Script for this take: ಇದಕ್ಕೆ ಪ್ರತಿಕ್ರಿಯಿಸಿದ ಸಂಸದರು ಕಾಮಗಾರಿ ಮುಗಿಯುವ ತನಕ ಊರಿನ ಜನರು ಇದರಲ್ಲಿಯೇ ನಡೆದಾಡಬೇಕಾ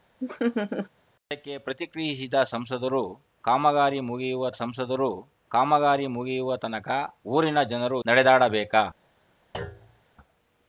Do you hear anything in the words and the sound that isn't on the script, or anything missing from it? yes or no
yes